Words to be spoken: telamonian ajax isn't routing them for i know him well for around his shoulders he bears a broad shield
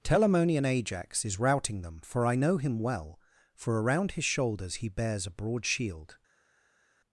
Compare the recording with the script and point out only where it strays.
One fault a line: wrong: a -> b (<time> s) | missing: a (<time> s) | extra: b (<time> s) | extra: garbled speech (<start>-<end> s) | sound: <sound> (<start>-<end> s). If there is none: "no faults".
wrong: isn't -> is (1.2 s)